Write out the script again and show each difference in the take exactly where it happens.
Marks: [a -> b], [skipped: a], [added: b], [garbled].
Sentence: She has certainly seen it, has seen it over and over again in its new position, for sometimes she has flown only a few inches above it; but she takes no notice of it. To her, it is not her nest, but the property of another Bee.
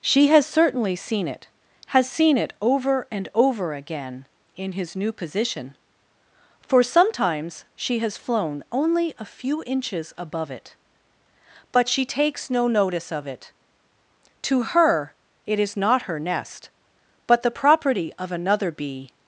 She has certainly seen it, has seen it over and over again in [its -> his] new position, for sometimes she has flown only a few inches above it; but she takes no notice of it. To her, it is not her nest, but the property of another Bee.